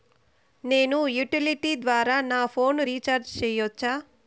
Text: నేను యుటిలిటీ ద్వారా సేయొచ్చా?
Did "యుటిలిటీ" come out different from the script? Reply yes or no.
no